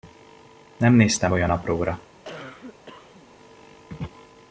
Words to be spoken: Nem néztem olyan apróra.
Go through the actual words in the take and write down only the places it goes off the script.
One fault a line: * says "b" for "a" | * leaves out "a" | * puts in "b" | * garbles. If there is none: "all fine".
all fine